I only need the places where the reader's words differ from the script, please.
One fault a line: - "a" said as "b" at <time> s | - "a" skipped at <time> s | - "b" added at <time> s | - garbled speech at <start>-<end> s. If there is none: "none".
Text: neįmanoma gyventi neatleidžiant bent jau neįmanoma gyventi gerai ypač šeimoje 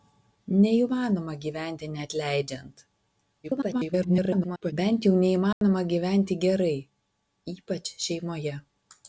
- garbled speech at 3.4-4.7 s